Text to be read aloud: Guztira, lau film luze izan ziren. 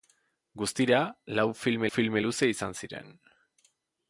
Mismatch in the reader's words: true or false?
true